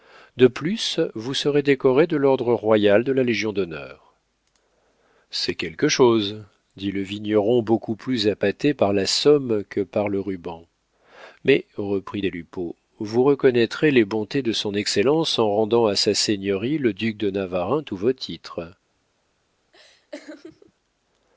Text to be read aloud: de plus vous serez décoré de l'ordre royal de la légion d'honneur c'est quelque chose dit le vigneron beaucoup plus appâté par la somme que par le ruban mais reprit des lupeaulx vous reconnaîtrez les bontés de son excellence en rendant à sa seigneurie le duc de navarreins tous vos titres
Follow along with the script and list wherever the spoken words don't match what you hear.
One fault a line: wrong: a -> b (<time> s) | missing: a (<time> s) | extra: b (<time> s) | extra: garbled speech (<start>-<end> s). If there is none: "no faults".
no faults